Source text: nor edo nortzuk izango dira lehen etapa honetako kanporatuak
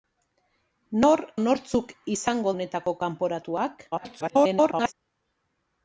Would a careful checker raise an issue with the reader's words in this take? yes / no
yes